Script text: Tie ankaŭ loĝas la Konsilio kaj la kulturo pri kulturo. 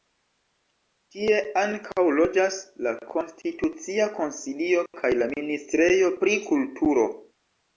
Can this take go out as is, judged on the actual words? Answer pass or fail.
fail